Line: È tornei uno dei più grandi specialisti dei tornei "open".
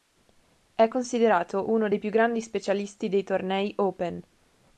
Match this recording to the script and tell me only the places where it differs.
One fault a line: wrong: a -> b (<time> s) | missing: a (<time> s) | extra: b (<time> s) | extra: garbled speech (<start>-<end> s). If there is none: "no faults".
wrong: tornei -> considerato (0.9 s)